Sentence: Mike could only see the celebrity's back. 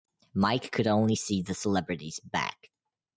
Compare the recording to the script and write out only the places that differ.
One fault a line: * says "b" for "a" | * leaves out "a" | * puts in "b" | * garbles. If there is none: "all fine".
all fine